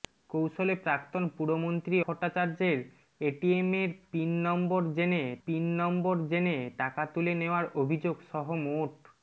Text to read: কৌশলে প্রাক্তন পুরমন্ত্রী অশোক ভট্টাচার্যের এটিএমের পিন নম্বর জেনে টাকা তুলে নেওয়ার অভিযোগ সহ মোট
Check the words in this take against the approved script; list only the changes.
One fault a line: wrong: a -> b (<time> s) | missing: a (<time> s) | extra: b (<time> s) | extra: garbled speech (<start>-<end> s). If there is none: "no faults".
missing: অশোক (2.0 s)
extra: পিন নম্বর জেনে (5.4 s)